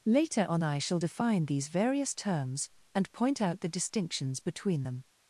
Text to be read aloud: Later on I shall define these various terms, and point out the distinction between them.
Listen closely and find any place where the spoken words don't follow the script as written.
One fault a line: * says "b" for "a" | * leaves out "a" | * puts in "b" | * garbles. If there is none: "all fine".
* says "distinctions" for "distinction"